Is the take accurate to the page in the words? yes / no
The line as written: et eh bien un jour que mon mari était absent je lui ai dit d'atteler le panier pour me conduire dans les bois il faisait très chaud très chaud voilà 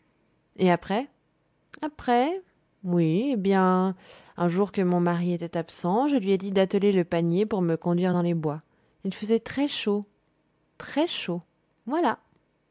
no